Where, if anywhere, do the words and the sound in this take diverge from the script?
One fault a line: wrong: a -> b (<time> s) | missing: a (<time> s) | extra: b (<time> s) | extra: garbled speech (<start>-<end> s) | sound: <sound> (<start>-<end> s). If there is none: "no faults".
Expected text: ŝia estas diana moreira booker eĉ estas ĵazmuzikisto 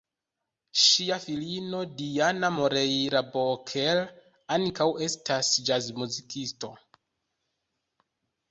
wrong: estas -> filino (1.2 s)
wrong: eĉ -> ankaŭ (4.6 s)